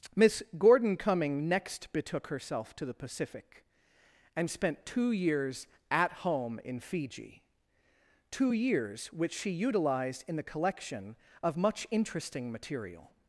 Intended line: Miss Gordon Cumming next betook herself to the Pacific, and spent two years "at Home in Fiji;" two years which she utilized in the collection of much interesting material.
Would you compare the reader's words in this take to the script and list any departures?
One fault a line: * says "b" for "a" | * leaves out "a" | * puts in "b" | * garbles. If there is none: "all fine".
all fine